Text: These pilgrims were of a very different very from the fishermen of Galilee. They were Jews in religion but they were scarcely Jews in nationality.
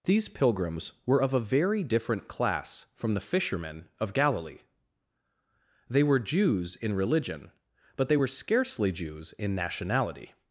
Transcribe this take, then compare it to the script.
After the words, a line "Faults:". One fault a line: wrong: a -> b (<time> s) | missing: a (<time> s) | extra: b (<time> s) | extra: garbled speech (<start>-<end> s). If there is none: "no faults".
These pilgrims were of a very different class from the fishermen of Galilee. They were Jews in religion but they were scarcely Jews in nationality.
Faults:
wrong: very -> class (2.3 s)